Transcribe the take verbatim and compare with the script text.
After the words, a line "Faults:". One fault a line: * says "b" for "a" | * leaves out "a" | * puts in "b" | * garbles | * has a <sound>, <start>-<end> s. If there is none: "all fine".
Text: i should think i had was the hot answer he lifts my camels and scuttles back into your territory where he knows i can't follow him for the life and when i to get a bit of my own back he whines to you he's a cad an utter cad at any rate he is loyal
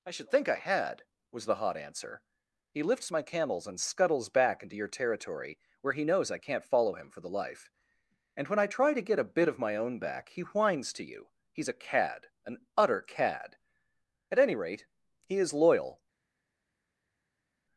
i should think i had was the hot answer he lifts my camels and scuttles back into your territory where he knows i can't follow him for the life and when i try to get a bit of my own back he whines to you he's a cad an utter cad at any rate he is loyal
Faults:
* puts in "try"